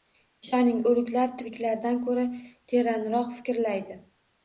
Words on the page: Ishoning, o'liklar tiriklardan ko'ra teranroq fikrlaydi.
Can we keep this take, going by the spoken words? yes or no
yes